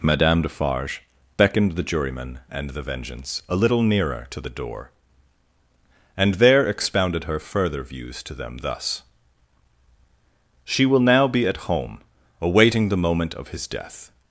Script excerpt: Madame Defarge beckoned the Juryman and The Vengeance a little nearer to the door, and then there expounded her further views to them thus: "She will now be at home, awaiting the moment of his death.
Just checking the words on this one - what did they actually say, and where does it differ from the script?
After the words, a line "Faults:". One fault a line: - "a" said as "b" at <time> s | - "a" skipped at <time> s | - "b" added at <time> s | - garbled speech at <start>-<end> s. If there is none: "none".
Madame Defarge beckoned the Juryman and The Vengeance a little nearer to the door, and there expounded her further views to them thus: "She will now be at home, awaiting the moment of his death.
Faults:
- "then" skipped at 6.3 s